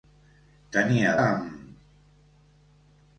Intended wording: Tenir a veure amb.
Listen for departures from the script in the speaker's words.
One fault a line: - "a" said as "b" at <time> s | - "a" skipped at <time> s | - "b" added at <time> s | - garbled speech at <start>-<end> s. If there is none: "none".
- "veure" skipped at 1.1 s